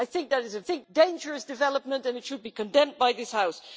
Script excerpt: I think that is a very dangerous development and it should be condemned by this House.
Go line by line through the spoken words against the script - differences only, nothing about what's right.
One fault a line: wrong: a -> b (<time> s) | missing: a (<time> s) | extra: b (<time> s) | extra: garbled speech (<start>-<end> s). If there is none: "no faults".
wrong: very -> think (0.6 s)